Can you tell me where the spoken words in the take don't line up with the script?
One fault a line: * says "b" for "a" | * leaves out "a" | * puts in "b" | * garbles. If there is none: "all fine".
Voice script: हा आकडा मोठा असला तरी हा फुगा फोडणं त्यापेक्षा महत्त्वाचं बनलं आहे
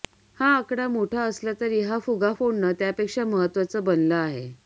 all fine